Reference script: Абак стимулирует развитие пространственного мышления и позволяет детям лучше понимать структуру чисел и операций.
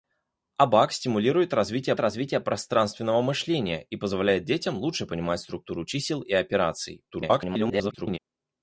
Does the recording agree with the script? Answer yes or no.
no